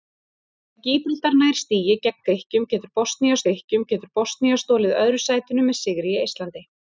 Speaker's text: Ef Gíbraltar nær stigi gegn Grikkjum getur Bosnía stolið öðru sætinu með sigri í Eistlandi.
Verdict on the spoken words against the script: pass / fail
fail